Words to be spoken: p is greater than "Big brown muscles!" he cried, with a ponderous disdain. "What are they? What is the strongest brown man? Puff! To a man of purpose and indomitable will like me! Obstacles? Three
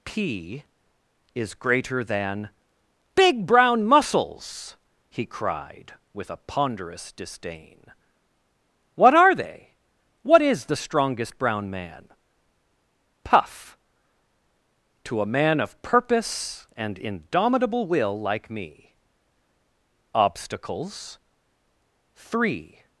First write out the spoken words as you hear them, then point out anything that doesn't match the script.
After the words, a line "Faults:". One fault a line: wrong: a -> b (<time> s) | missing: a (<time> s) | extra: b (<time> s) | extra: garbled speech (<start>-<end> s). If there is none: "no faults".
p is greater than "Big brown muscles!" he cried, with a ponderous disdain. "What are they? What is the strongest brown man? Puff! To a man of purpose and indomitable will like me! Obstacles? Three
Faults:
no faults